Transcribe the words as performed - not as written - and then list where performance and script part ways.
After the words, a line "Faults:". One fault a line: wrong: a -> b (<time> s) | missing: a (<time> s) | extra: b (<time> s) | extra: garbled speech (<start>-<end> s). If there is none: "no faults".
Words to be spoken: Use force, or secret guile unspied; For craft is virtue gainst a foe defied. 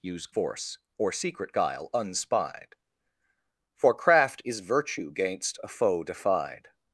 Use force, or secret guile unspied; For craft is virtue gainst a foe defied.
Faults:
no faults